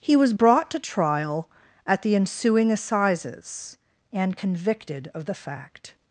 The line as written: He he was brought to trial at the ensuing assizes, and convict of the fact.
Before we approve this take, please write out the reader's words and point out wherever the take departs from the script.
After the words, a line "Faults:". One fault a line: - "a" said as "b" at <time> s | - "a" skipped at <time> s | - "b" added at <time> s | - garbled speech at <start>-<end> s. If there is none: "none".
He was brought to trial at the ensuing assizes, and convicted of the fact.
Faults:
- "he" skipped at 0.1 s
- "convict" said as "convicted" at 4.3 s